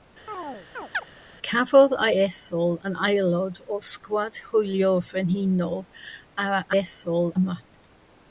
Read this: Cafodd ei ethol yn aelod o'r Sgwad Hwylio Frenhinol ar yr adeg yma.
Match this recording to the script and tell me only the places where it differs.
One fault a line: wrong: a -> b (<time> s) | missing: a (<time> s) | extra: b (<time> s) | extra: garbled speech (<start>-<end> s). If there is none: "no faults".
wrong: adeg -> ethol (6.8 s)